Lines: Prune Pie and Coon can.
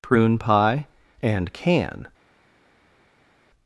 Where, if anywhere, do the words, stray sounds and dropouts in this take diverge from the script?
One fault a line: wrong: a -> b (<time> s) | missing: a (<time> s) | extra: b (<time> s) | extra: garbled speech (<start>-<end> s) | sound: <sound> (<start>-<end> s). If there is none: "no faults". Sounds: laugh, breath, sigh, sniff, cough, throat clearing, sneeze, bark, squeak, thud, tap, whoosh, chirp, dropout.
missing: Coon (1.5 s)